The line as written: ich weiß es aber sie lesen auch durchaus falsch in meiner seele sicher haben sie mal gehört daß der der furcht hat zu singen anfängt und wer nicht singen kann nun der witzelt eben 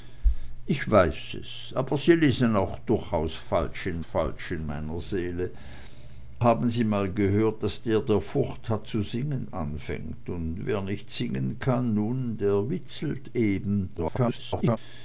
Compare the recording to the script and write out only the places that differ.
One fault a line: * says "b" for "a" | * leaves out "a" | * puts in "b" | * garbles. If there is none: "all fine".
* puts in "falsch in"
* leaves out "sicher"
* garbles